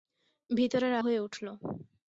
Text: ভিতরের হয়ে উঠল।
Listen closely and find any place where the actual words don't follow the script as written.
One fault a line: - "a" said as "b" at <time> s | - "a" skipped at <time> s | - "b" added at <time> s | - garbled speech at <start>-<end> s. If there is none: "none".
none